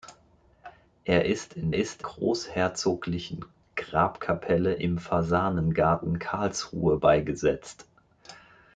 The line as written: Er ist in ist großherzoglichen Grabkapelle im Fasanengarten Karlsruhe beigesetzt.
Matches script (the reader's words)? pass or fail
pass